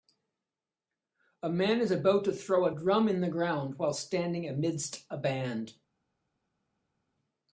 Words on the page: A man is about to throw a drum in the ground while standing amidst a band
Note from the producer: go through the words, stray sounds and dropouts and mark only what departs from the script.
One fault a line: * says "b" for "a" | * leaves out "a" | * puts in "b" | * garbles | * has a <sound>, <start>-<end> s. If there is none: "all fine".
all fine